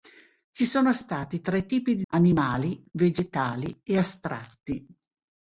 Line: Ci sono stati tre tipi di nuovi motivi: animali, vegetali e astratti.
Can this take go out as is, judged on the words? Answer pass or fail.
fail